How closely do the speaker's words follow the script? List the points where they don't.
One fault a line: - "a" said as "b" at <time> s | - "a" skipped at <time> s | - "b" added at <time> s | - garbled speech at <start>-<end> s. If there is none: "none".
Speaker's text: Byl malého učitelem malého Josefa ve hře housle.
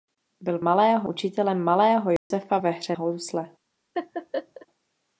none